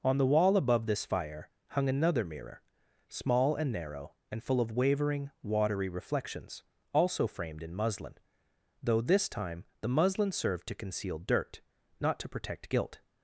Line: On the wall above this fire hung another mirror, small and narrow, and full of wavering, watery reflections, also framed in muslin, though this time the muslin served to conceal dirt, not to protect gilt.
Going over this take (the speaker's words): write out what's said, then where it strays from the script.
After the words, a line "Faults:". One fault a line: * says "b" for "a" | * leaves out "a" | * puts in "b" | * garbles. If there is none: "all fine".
On the wall above this fire hung another mirror, small and narrow, and full of wavering, watery reflections, also framed in muslin, though this time the muslin served to conceal dirt, not to protect gilt.
Faults:
all fine